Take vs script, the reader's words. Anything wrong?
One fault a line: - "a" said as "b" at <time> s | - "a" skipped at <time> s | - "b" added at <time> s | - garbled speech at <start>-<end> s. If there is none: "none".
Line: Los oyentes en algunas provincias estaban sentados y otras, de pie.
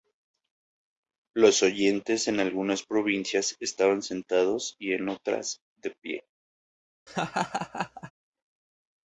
- "en" added at 4.9 s